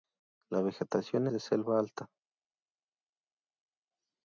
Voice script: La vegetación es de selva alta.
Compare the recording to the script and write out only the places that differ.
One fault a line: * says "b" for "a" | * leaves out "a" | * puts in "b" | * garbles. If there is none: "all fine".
* leaves out "es"